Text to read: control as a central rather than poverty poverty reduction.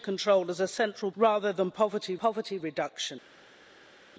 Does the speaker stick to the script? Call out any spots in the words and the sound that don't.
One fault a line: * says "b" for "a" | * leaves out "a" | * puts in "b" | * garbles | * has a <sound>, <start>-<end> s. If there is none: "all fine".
all fine